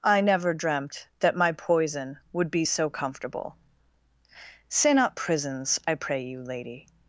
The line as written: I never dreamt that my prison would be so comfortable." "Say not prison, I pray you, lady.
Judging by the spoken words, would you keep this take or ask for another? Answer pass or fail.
fail